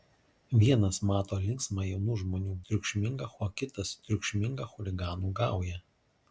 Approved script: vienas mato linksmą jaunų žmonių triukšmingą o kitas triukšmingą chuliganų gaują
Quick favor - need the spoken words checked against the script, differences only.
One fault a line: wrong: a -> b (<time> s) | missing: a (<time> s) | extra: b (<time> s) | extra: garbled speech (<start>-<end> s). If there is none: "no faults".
no faults